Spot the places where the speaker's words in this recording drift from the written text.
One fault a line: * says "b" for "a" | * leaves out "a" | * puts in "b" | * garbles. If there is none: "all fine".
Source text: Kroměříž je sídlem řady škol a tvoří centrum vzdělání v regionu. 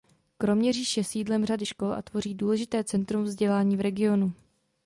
* puts in "důležité"